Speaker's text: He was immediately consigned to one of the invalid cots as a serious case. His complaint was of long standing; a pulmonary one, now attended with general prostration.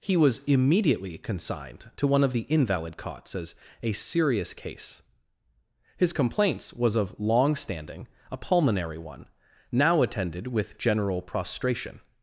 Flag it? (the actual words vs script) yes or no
yes